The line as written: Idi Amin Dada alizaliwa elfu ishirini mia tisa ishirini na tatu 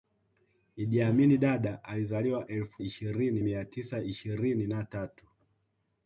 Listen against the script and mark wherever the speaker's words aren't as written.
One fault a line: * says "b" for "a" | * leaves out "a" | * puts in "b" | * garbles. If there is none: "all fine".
all fine